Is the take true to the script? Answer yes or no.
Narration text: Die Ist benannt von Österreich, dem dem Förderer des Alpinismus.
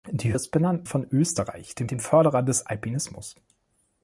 yes